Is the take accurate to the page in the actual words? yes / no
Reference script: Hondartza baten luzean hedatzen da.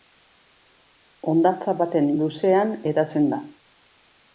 yes